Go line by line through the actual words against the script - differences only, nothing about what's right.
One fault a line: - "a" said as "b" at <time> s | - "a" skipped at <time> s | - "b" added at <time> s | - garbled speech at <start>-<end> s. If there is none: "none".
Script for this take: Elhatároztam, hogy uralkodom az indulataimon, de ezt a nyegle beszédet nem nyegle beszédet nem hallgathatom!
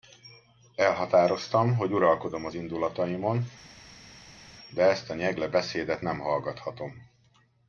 - "nyegle beszédet nem" skipped at 6.2 s